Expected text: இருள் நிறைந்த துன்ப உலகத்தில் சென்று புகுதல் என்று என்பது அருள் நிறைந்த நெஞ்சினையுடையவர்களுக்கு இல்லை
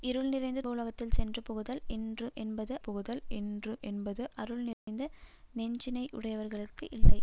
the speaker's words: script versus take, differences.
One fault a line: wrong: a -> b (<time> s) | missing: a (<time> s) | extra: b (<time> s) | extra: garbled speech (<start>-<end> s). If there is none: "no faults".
missing: துன்ப (0.6 s)
extra: புகுதல் என்று என்பது (2.8 s)